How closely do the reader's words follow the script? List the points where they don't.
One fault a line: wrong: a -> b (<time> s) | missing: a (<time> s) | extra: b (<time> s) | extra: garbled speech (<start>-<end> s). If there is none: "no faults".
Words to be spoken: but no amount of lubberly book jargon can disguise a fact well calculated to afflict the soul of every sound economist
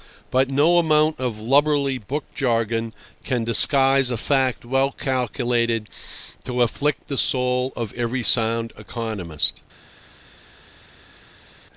no faults